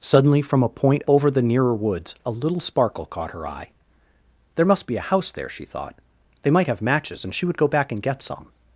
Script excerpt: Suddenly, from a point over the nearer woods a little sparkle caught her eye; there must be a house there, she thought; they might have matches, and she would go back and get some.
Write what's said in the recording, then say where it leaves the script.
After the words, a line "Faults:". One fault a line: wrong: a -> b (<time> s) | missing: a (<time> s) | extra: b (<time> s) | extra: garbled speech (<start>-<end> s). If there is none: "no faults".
Suddenly, from a point over the nearer woods a little sparkle caught her eye; there must be a house there, she thought; they might have matches, and she would go back and get some.
Faults:
no faults